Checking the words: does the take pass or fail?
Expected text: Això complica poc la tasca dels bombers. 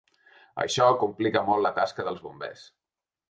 fail